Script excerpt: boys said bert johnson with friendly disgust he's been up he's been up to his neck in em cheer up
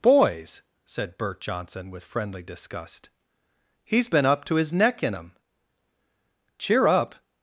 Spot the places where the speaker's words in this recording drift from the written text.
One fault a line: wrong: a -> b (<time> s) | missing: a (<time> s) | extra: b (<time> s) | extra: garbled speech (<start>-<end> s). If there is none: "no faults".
missing: he's been up (4.5 s)